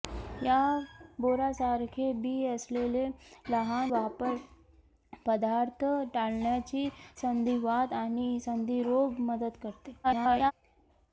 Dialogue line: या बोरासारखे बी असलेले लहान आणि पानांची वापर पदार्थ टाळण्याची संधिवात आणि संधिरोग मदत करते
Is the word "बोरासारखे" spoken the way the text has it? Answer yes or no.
yes